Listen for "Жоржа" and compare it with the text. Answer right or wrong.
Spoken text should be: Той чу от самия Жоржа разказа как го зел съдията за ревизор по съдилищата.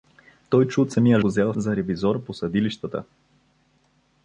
wrong